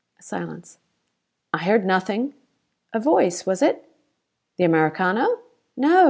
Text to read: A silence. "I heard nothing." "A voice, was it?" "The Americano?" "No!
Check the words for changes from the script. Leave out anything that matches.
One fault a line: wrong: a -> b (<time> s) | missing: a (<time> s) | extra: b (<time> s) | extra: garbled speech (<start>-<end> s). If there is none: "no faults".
no faults